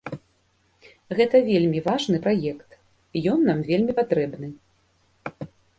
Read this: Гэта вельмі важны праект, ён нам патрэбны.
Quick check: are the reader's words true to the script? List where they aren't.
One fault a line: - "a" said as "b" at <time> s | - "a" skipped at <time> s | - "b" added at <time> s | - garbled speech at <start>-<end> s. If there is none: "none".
- "вельмі" added at 3.7 s